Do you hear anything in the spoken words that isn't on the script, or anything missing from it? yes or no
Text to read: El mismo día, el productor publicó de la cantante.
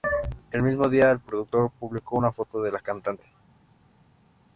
yes